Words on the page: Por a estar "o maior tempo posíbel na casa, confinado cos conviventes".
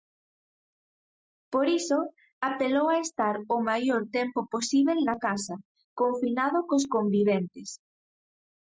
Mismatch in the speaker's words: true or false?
true